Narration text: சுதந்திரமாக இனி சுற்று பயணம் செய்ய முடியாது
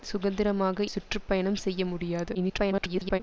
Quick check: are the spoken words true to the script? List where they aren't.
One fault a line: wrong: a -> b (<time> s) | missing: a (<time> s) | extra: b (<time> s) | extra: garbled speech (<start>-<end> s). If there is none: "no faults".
missing: இனி (0.8 s)
extra: garbled speech (2.3-3.2 s)